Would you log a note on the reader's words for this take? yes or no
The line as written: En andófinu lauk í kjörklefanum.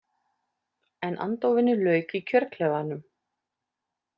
no